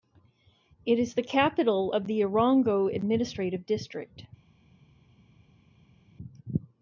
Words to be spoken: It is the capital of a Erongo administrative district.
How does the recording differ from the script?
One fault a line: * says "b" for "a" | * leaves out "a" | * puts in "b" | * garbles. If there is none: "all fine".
* says "the" for "a"